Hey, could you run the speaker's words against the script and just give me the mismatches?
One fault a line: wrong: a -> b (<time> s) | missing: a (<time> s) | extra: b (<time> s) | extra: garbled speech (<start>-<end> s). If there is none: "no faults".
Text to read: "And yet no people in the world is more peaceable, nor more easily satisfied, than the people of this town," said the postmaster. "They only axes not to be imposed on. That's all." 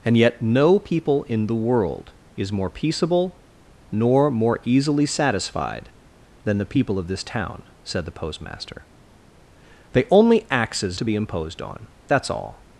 missing: not (11.0 s)